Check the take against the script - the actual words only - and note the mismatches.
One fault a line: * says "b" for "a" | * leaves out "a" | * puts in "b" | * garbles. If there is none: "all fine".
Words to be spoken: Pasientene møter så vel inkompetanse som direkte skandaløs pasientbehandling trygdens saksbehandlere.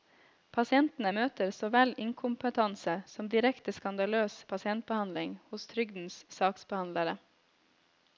* puts in "hos"